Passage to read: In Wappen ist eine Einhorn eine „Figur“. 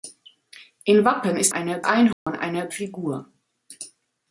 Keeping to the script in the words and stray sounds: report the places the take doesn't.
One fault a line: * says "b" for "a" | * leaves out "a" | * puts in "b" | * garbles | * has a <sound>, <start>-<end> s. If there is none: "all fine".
* has a dropout, 2.1-2.3 s